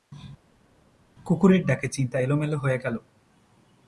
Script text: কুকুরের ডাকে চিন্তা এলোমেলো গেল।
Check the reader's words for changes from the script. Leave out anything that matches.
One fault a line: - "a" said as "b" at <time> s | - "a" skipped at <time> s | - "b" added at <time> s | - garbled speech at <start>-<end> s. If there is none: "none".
- "হয়ে" added at 2.6 s